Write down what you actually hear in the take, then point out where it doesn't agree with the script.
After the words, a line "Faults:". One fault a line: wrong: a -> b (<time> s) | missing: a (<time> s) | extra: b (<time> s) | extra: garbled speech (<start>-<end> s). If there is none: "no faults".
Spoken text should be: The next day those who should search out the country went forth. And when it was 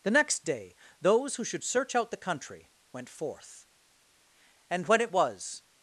The next day those who should search out the country went forth. And when it was
Faults:
no faults